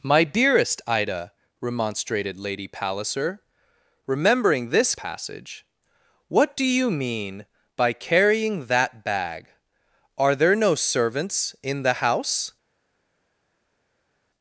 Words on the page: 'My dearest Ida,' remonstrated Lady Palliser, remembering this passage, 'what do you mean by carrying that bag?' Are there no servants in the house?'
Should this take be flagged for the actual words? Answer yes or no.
no